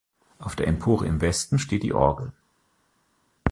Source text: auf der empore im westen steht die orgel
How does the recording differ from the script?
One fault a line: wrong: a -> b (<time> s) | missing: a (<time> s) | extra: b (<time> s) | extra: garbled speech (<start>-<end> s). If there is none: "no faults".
no faults